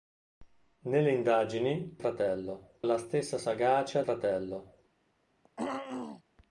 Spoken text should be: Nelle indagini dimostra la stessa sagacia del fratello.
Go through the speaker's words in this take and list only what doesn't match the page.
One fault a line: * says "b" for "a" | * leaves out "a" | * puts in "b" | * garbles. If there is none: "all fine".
* says "fratello" for "dimostra"
* leaves out "del"